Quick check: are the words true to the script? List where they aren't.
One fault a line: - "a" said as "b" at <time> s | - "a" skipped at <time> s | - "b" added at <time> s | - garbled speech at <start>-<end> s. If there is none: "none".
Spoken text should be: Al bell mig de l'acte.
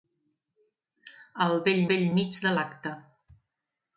- "bell" added at 1.9 s